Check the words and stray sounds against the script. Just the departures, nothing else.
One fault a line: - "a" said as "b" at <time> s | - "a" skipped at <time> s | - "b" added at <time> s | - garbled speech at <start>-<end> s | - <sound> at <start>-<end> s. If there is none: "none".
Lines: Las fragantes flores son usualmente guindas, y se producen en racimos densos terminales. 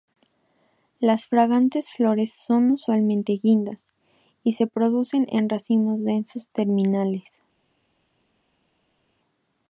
none